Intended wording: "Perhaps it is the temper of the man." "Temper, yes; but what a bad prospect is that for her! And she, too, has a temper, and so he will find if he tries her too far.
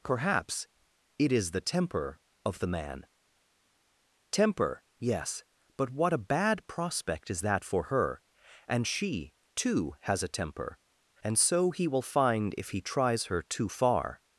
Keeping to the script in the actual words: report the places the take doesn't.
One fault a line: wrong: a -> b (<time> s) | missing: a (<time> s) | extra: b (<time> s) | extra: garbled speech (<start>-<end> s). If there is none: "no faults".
no faults